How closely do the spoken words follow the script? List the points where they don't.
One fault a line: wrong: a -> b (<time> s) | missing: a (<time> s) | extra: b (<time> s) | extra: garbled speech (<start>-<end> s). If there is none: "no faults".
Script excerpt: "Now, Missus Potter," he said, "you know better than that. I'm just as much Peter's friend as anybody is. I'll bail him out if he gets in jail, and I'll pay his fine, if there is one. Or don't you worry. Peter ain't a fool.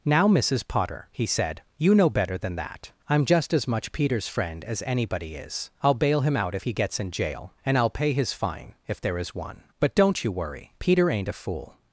wrong: Or -> But (9.8 s)